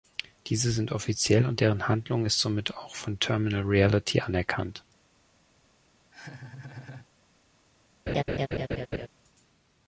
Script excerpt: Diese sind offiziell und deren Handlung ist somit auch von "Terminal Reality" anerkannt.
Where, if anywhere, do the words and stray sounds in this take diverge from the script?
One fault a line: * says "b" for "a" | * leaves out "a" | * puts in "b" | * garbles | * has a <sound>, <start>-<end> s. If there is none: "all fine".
* has a laugh, 6.1-7.1 s
* has a laugh, 8.1-9.1 s